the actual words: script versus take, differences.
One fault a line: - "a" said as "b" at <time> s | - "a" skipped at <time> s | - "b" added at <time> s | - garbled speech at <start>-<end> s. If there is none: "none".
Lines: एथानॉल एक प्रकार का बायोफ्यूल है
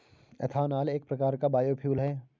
none